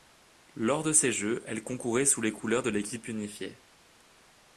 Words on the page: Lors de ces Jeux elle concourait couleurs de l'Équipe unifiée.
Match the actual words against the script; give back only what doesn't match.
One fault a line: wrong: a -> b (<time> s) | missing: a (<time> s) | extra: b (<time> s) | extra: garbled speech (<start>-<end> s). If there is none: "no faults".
extra: sous les (2.1 s)